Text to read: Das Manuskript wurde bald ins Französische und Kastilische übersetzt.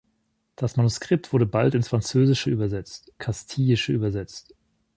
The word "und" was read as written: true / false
false